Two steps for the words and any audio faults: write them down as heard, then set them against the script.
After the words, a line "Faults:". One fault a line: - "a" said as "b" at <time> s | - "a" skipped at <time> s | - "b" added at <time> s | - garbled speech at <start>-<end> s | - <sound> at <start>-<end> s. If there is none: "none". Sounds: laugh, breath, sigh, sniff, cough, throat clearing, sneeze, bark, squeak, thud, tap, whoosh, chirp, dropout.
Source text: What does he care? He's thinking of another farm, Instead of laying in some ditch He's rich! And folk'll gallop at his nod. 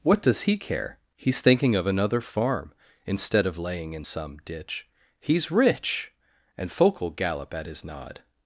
What does he care? He's thinking of another farm, Instead of laying in some ditch He's rich! And folk'll gallop at his nod.
Faults:
none